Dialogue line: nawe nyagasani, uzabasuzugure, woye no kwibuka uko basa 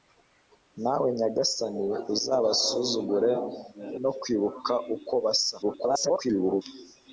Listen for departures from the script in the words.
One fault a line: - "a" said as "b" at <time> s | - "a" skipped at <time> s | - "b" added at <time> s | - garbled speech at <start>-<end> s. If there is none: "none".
- "woye" skipped at 3.3 s
- garbled speech at 5.6-6.6 s